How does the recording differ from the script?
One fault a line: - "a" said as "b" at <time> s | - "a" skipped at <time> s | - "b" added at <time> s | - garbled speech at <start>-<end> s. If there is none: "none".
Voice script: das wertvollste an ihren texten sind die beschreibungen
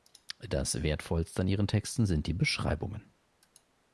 none